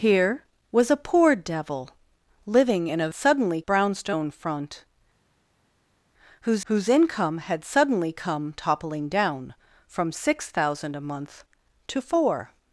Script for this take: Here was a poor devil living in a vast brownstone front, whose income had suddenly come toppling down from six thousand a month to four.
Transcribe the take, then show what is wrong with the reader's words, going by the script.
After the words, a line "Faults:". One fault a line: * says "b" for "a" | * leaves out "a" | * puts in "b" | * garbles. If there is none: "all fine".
Here was a poor devil living in a suddenly brownstone front, whose whose income had suddenly come toppling down from six thousand a month to four.
Faults:
* says "suddenly" for "vast"
* puts in "whose"